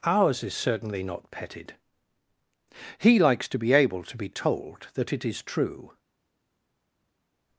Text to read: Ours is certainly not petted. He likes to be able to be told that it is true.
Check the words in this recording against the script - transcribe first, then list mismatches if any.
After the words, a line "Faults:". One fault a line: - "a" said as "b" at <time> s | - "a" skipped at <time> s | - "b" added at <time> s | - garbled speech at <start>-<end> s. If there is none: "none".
Ours is certainly not petted. He likes to be able to be told that it is true.
Faults:
none